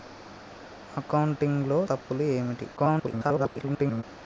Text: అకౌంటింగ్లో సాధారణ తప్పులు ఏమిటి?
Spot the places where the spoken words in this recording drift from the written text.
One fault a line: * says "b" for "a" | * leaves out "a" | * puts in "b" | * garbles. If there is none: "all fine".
* leaves out "సాధారణ"
* garbles